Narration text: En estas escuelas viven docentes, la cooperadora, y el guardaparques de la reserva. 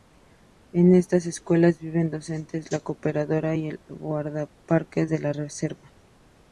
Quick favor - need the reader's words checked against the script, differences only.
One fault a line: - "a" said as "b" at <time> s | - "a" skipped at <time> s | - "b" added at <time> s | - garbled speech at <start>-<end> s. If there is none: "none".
none